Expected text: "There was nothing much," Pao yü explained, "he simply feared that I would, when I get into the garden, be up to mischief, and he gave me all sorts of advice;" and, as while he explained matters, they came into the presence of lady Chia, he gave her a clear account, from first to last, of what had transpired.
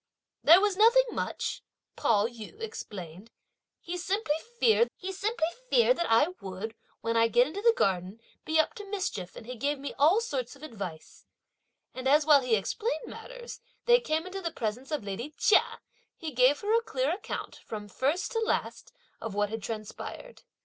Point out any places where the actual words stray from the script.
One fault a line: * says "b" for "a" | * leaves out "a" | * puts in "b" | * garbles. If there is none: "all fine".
* puts in "he simply feared"